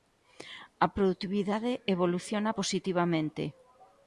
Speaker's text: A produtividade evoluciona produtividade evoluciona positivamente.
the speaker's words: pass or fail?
fail